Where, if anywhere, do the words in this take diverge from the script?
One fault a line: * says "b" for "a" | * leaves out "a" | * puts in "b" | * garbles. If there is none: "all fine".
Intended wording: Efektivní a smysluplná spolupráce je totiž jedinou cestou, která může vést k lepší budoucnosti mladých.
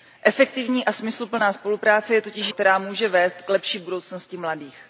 * leaves out "jedinou cestou"